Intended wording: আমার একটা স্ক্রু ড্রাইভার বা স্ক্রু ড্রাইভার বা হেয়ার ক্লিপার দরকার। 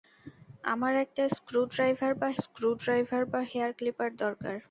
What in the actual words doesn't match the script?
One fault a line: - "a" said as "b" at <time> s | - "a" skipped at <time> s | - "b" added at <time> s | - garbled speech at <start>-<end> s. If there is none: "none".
none